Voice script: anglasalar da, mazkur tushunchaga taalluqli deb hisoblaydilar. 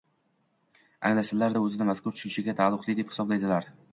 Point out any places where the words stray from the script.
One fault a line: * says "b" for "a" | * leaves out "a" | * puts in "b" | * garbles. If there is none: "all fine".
* puts in "o‘zini"